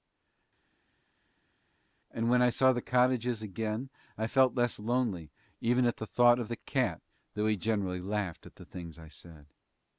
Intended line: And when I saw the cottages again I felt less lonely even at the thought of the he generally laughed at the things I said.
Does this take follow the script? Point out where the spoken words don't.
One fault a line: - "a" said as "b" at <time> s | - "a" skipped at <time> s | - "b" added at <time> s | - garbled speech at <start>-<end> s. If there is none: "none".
- "cat though" added at 6.6 s